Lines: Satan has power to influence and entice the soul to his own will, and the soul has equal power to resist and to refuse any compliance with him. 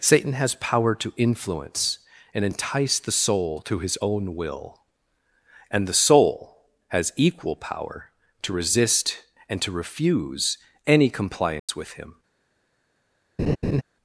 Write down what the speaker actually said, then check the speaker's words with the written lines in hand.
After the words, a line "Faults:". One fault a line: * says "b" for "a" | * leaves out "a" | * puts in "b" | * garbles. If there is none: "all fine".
Satan has power to influence and entice the soul to his own will, and the soul has equal power to resist and to refuse any compliance with him.
Faults:
all fine